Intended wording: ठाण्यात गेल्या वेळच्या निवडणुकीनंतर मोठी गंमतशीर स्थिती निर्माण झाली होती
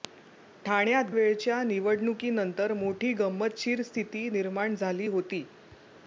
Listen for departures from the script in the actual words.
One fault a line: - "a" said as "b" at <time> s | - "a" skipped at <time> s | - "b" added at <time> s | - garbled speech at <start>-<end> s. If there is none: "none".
- "गेल्या" skipped at 1.1 s